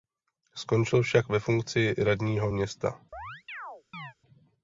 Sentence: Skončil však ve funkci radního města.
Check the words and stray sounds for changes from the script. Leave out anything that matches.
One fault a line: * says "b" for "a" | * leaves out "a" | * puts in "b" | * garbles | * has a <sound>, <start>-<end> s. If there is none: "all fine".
* has a chirp, 3.1-4.1 s